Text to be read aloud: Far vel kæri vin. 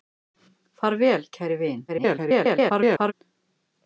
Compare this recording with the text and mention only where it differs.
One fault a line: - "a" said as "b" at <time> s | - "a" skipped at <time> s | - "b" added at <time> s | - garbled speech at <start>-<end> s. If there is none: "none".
- garbled speech at 1.9-3.1 s